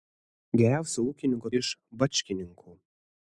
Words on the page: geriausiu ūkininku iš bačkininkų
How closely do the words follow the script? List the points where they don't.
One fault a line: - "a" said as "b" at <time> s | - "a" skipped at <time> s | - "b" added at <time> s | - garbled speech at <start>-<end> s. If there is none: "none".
none